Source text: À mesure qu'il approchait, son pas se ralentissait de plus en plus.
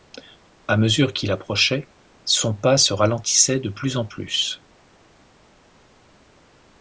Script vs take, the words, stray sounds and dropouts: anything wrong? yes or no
no